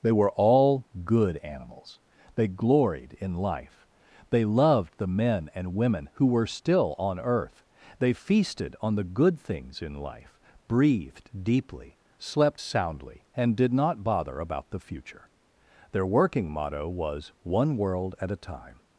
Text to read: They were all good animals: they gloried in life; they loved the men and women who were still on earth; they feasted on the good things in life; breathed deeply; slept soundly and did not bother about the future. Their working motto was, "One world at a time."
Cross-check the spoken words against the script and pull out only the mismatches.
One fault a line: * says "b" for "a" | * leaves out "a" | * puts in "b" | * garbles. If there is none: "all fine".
all fine